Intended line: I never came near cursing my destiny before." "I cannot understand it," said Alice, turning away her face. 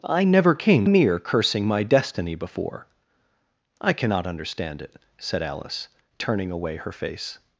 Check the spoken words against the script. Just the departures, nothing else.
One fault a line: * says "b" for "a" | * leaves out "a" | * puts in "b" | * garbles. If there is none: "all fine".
all fine